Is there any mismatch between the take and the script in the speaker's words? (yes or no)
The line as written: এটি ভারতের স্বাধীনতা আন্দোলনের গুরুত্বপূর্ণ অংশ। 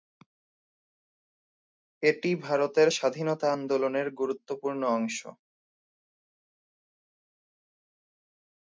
no